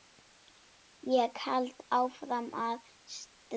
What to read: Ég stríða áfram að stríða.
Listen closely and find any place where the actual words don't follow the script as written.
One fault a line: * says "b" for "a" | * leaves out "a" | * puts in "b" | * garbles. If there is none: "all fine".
* says "held" for "stríða"